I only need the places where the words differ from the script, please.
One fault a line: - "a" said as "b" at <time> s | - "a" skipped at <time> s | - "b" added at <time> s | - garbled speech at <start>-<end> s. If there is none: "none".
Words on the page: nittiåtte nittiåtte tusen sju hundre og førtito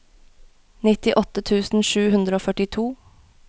- "nittiåtte" skipped at 1.4 s